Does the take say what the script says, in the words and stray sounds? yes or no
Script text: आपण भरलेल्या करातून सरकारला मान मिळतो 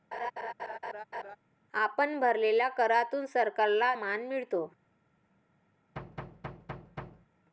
no